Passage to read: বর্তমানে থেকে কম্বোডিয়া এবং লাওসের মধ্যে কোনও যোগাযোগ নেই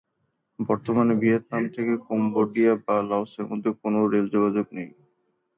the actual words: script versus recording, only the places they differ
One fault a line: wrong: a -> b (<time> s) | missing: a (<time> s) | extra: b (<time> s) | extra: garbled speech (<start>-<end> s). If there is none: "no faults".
extra: ভিয়েতনাম (1.1 s)
wrong: এবং -> বা (2.9 s)
extra: রেল (4.1 s)